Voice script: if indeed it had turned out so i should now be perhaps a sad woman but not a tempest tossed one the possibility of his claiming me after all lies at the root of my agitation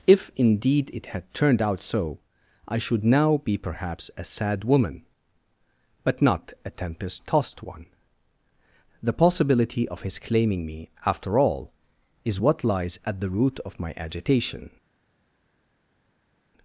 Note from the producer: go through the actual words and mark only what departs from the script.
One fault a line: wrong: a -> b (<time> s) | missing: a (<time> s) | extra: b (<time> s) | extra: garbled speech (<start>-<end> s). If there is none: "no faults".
extra: is what (12.2 s)